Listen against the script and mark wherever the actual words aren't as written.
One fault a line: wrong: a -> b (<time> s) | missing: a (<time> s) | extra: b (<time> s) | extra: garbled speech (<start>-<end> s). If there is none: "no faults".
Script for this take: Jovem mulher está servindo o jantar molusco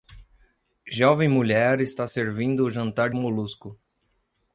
no faults